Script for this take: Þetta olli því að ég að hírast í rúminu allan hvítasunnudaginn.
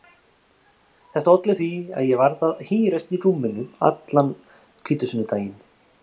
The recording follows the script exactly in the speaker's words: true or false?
false